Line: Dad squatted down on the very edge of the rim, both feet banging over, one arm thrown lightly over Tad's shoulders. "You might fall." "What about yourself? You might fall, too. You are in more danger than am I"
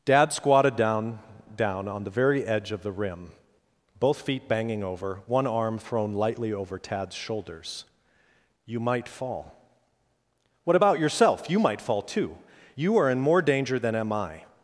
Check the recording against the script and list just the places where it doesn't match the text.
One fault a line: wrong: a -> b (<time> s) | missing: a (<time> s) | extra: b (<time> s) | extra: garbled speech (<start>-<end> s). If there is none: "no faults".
extra: down (1.6 s)